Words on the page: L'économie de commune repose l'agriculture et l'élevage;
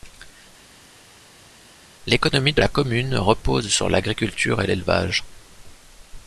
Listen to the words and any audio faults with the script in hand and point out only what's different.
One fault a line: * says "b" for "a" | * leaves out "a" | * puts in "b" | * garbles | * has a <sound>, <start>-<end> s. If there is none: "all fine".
* puts in "la"
* puts in "sur"